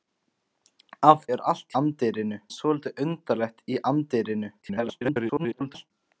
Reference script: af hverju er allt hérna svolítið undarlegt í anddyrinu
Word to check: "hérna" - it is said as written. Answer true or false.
false